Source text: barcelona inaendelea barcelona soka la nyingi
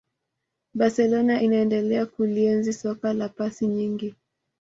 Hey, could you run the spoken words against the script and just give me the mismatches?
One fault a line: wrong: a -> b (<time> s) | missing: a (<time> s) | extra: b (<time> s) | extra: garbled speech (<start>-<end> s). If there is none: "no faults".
wrong: barcelona -> kulienzi (2.1 s)
extra: pasi (3.3 s)